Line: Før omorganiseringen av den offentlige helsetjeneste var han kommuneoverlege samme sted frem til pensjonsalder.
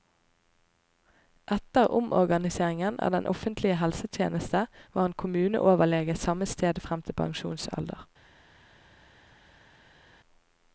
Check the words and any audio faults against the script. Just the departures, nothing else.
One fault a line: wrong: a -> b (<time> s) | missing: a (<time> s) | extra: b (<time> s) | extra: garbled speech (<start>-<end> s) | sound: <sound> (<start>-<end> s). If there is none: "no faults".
wrong: Før -> Etter (1.6 s)